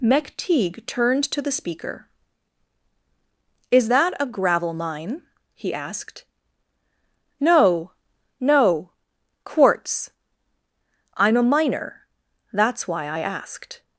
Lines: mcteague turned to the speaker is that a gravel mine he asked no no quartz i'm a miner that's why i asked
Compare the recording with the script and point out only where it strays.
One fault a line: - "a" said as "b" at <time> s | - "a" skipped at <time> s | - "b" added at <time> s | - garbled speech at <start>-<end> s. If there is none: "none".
none